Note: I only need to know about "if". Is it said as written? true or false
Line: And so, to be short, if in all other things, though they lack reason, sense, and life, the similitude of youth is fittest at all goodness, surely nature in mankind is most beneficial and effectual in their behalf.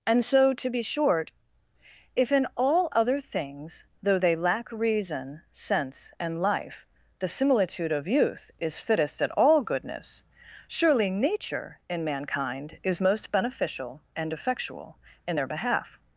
true